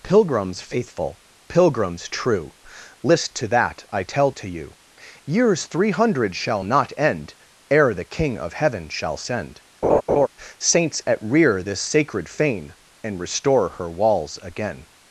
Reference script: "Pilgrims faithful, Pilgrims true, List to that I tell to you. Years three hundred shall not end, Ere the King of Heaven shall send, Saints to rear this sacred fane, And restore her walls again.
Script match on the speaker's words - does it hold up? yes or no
no